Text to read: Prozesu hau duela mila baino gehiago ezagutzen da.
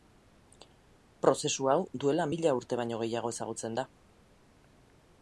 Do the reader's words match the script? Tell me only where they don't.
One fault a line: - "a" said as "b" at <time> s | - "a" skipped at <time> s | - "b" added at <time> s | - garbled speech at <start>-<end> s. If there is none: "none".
- "urte" added at 2.6 s